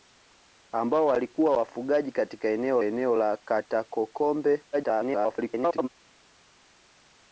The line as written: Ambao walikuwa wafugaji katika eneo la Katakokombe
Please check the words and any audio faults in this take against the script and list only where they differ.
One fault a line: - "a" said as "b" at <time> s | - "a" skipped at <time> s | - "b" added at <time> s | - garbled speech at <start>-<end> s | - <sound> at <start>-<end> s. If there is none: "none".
- "eneo" added at 2.8 s
- garbled speech at 4.7-5.9 s